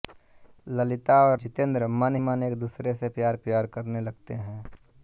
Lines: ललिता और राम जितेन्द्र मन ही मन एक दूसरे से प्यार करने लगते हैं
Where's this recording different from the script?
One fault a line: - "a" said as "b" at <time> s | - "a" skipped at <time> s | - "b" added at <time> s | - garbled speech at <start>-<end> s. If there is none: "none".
- "राम" skipped at 1.4 s
- "ही" skipped at 2.2 s
- "प्यार" added at 3.4 s